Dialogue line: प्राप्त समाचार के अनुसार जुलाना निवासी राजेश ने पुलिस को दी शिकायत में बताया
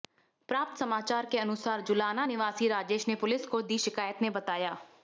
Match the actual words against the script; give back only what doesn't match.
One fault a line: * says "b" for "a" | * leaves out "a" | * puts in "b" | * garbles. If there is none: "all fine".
all fine